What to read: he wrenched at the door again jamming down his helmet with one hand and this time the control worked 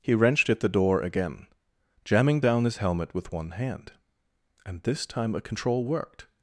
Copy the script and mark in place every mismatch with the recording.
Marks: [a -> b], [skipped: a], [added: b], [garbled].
he wrenched at the door again jamming down his helmet with one hand and this time [the -> a] control worked